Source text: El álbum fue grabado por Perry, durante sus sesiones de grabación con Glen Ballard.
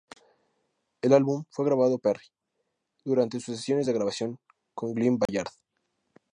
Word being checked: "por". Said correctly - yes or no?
no